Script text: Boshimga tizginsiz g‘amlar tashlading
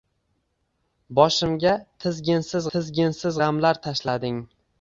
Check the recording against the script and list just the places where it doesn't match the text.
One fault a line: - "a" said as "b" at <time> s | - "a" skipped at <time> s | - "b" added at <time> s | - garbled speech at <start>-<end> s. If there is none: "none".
- "tizginsiz" added at 2.7 s